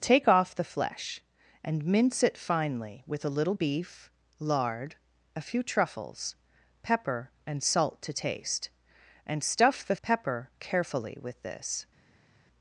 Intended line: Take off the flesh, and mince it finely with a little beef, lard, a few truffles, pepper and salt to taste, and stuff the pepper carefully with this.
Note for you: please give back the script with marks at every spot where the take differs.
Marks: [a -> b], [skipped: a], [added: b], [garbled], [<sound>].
Take off the flesh, and mince it finely with a little beef, lard, a few truffles, pepper and salt to taste, and stuff the pepper carefully with this.